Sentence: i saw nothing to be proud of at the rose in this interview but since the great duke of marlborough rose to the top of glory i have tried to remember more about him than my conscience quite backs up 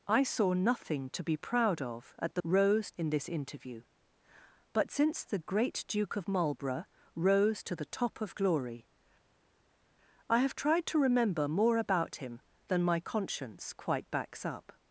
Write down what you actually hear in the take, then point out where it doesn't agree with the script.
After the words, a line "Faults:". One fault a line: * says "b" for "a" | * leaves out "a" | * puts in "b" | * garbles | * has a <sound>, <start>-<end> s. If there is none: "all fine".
i saw nothing to be proud of at the rose in this interview but since the great duke of marlborough rose to the top of glory i have tried to remember more about him than my conscience quite backs up
Faults:
all fine